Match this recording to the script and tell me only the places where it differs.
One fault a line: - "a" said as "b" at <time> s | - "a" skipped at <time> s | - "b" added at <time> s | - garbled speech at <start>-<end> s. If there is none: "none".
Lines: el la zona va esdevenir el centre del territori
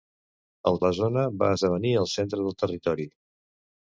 none